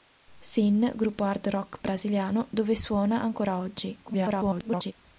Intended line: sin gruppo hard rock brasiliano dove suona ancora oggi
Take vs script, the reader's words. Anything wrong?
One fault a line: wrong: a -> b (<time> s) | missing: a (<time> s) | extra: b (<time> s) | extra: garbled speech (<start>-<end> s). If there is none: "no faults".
extra: garbled speech (4.1-4.9 s)